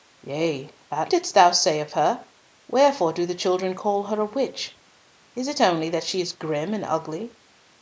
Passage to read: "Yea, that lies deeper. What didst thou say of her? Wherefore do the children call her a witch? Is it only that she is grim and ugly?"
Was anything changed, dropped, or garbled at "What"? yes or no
yes